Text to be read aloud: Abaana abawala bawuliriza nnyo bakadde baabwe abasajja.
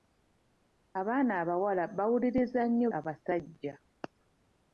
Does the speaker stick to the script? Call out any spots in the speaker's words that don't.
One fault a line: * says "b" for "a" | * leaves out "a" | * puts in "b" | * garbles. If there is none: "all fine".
* leaves out "bakadde baabwe"